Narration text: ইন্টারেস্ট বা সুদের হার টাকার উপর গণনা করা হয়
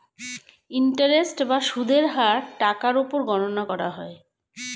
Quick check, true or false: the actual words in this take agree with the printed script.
true